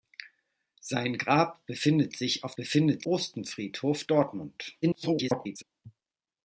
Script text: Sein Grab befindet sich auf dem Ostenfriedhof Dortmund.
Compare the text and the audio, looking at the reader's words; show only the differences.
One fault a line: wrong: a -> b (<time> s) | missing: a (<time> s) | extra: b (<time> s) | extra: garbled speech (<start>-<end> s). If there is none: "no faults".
wrong: dem -> befindet (2.6 s)
extra: garbled speech (4.8-5.6 s)